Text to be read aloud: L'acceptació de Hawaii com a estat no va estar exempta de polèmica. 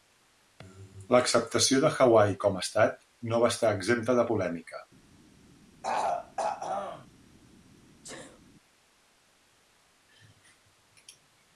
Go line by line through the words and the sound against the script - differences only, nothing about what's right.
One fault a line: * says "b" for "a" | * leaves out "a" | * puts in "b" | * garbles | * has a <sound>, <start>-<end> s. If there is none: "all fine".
* has a throat clearing, 5.8-7.1 s
* has a sneeze, 8.0-8.4 s